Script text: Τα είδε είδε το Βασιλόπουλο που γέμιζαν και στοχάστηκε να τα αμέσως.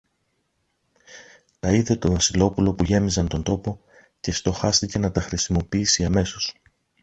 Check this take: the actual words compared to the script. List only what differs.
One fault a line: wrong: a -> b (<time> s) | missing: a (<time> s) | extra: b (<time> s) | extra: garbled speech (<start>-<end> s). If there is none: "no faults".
missing: είδε (1.9 s)
extra: τον τόπο (3.3 s)
extra: χρησιμοποιήσει (5.2 s)